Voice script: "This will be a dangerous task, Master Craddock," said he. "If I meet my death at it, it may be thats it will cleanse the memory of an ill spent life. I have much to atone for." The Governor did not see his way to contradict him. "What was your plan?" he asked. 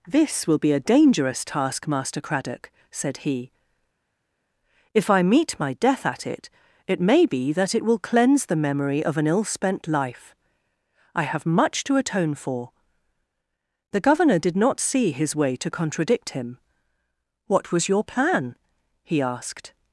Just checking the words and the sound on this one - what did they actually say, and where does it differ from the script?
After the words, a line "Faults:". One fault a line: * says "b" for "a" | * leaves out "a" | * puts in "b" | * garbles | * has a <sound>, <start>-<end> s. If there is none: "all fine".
"This will be a dangerous task, Master Craddock," said he. "If I meet my death at it, it may be that it will cleanse the memory of an ill spent life. I have much to atone for." The Governor did not see his way to contradict him. "What was your plan?" he asked.
Faults:
* says "that" for "thats"